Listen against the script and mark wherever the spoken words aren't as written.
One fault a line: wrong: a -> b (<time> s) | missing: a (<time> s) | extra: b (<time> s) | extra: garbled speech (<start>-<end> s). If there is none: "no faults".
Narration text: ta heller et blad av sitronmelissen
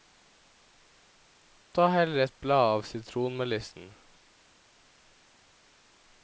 no faults